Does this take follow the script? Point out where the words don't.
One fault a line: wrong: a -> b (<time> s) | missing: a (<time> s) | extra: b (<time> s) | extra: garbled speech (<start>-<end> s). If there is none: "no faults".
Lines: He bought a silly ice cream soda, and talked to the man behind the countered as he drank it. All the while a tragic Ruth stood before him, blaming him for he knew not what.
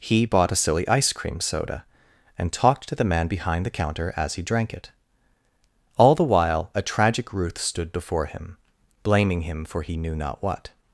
wrong: countered -> counter (3.8 s)